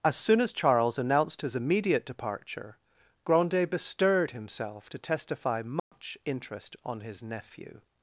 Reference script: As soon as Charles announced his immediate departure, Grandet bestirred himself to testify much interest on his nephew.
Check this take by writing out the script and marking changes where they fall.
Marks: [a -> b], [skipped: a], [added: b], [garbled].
As soon as Charles announced his immediate departure, Grandet bestirred himself to testify much interest on his nephew.